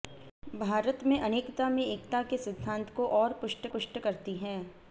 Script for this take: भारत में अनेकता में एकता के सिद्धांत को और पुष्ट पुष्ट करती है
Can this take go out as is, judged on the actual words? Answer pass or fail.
pass